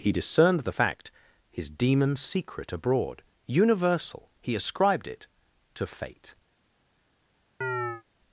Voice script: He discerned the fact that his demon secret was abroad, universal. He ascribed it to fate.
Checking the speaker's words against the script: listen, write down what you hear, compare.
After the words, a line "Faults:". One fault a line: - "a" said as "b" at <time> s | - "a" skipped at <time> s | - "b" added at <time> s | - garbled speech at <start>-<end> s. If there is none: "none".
He discerned the fact his demon secret abroad, universal. He ascribed it to fate.
Faults:
- "that" skipped at 1.1 s
- "was" skipped at 2.7 s